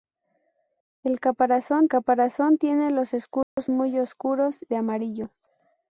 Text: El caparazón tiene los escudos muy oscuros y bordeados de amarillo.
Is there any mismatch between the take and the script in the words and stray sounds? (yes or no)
yes